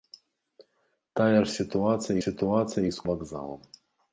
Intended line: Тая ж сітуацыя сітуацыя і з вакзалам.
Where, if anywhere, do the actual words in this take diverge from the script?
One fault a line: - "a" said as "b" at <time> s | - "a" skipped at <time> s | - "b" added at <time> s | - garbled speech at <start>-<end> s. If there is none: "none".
none